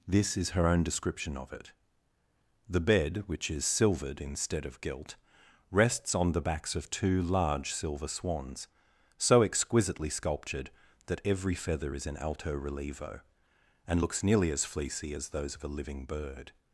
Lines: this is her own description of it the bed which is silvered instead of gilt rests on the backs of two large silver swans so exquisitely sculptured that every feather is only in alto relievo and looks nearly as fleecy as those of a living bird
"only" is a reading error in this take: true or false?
true